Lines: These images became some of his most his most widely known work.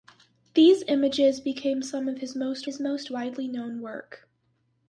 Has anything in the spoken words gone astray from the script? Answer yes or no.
no